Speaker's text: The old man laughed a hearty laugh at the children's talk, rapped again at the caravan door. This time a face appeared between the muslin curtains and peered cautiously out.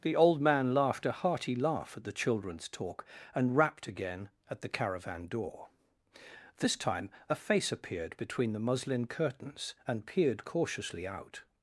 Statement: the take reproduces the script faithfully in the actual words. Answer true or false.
false